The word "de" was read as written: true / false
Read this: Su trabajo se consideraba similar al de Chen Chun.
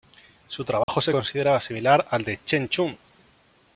true